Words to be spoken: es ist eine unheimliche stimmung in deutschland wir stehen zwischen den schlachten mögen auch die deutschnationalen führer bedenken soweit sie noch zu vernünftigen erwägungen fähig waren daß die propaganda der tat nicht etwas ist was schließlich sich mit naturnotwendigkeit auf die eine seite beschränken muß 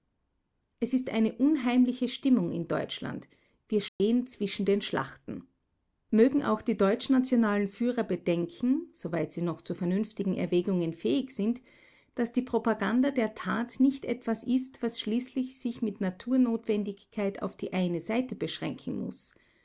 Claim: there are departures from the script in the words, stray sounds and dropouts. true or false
true